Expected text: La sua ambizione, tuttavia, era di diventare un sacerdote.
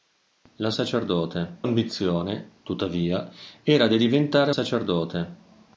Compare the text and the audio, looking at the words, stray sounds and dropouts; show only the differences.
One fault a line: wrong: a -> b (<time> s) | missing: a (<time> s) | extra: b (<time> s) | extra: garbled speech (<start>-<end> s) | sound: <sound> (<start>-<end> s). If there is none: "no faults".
wrong: sua -> sacerdote (0.7 s)
missing: un (4.5 s)